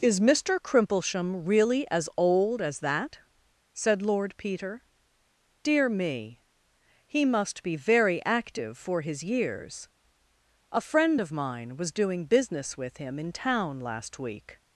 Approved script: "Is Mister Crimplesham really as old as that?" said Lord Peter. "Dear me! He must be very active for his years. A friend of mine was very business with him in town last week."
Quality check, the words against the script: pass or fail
fail